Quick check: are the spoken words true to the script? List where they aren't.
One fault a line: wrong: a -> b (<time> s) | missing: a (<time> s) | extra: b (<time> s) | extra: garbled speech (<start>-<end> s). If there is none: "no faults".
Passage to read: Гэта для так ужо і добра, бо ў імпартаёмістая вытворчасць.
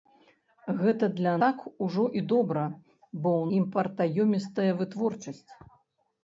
no faults